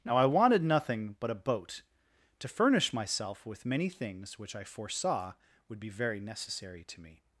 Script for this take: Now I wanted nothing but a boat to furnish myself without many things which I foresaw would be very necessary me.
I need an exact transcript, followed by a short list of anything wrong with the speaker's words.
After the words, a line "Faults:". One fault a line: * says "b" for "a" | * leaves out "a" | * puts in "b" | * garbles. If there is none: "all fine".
Now I wanted nothing but a boat to furnish myself with many things which I foresaw would be very necessary to me.
Faults:
* says "with" for "without"
* puts in "to"